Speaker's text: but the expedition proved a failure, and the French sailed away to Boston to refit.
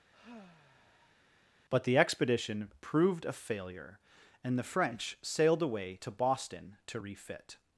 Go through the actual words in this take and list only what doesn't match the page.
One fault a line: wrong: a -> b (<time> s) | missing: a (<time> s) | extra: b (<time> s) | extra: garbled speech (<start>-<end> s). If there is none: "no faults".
no faults